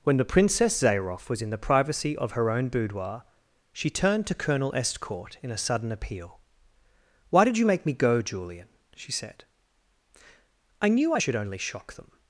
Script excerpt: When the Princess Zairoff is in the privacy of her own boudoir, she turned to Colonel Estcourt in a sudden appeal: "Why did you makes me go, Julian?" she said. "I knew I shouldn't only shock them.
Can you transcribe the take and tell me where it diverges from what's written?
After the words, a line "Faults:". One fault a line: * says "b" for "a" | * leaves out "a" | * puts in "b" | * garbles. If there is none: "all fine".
When the Princess Zairoff was in the privacy of her own boudoir, she turned to Colonel Estcourt in a sudden appeal: "Why did you make me go, Julian?" she said. "I knew I should only shock them.
Faults:
* says "was" for "is"
* says "make" for "makes"
* says "should" for "shouldn't"